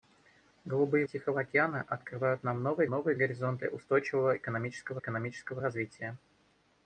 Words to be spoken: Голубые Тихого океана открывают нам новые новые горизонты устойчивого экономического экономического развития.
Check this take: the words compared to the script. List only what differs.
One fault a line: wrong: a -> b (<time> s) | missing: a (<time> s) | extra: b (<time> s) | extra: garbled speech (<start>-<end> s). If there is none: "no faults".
no faults